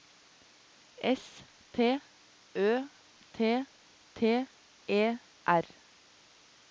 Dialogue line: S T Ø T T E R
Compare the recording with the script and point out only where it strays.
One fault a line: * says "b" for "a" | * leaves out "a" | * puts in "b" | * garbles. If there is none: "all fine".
all fine